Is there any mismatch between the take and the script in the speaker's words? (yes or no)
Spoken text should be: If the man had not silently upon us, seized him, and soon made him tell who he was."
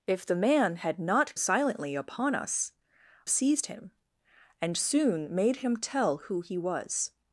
no